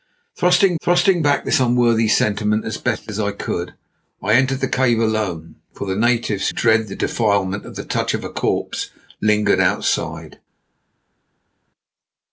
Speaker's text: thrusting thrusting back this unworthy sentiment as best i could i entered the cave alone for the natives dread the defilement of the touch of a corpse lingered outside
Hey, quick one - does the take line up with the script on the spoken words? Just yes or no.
yes